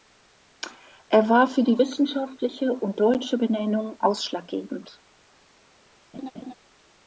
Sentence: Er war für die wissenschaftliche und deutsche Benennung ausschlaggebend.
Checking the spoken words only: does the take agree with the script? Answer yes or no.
yes